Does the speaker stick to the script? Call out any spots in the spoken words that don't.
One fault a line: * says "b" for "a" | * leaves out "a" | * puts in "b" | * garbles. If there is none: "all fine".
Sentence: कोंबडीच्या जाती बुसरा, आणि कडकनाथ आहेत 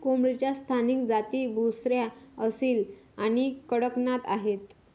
* puts in "स्थानिक"
* puts in "असील"